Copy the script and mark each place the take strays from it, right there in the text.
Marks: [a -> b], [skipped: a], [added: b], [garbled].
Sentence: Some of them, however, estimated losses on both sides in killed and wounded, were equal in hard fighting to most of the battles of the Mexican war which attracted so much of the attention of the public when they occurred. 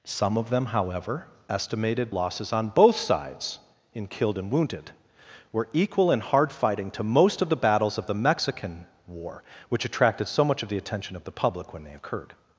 Some of them, however, estimated losses on both sides in killed and wounded, were equal in hard fighting to most of the battles of the Mexican war which attracted so much of the attention of the public when they occurred.